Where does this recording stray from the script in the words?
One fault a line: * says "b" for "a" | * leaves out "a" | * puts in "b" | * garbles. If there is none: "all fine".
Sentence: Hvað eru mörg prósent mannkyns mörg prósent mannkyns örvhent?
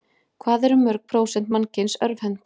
* leaves out "mörg prósent mannkyns"